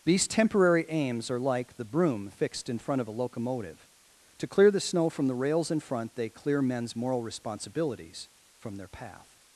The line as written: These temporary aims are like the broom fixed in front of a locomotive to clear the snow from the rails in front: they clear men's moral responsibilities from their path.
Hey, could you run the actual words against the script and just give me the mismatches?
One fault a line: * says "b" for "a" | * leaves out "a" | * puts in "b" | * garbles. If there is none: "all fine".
all fine